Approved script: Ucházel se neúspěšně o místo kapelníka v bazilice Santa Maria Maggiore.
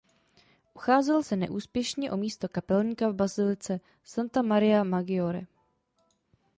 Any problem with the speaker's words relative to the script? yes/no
no